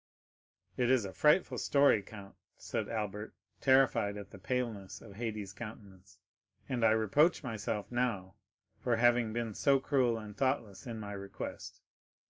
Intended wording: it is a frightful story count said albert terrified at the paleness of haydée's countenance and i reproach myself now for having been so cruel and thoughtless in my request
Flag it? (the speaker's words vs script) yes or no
no